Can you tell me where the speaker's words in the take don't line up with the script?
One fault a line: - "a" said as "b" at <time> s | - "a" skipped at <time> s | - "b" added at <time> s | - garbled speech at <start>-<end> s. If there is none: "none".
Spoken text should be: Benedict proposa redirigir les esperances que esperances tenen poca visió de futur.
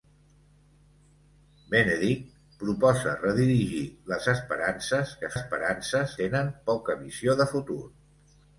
none